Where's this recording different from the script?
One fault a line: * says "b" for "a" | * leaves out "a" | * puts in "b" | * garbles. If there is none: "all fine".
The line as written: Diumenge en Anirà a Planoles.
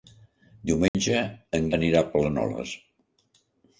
all fine